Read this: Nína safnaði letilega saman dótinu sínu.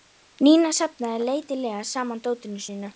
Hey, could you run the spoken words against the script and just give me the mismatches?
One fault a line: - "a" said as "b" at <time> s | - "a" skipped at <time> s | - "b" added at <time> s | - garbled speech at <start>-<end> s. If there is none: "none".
none